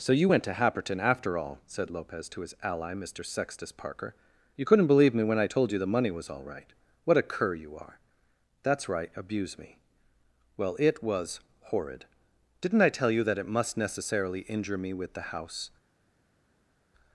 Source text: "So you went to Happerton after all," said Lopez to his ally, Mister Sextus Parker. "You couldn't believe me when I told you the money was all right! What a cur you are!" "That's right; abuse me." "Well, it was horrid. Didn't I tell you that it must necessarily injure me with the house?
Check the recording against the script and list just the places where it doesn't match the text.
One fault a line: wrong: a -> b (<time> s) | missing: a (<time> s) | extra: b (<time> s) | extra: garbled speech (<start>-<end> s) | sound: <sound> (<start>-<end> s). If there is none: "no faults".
no faults